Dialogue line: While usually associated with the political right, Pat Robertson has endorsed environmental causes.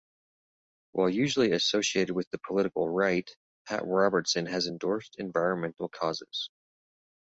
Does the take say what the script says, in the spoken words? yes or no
yes